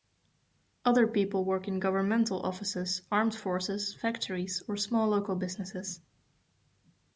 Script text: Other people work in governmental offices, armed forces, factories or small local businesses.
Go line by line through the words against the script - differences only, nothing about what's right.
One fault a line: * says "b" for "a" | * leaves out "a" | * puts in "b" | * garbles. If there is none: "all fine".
all fine